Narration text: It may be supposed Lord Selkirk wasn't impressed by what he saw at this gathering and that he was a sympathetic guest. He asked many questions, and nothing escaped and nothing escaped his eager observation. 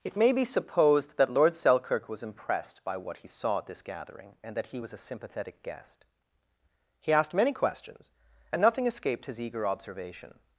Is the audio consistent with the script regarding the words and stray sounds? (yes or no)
no